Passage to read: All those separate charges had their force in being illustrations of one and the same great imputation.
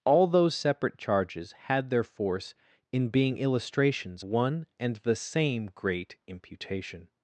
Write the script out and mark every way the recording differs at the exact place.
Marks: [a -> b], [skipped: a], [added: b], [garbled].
All those separate charges had their force in being illustrations [skipped: of] one and the same great imputation.